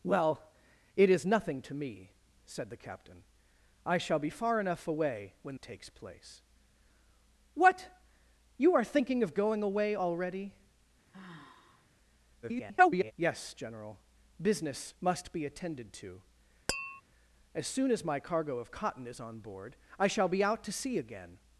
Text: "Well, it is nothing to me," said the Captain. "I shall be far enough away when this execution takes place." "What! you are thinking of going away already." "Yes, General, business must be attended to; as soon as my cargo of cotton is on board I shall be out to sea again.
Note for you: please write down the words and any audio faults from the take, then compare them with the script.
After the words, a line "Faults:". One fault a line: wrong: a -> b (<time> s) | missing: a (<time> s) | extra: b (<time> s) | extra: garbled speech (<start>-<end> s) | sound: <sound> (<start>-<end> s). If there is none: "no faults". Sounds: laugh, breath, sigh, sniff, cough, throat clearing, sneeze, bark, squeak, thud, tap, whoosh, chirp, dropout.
"Well, it is nothing to me," said the Captain. "I shall be far enough away when takes place." "What! you are thinking of going away already." [garbled] "Yes, General, business must be attended to; as soon as my cargo of cotton is on board I shall be out to sea again.
Faults:
missing: this execution (5.6 s)
sound: sigh (11.1-11.9 s)
extra: garbled speech (12.4-13.1 s)
sound: tap (16.7-17.0 s)